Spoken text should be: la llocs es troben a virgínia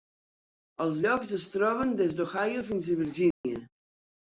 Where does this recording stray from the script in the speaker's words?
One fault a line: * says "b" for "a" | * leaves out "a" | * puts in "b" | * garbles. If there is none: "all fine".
* says "els" for "la"
* puts in "des d'ohio fins"